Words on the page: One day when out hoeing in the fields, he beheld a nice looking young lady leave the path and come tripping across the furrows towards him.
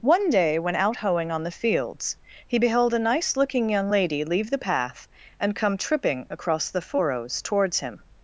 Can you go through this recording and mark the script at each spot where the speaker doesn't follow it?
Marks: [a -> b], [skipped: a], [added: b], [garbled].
One day when out hoeing [in -> on] the fields, he beheld a nice looking young lady leave the path and come tripping across the furrows towards him.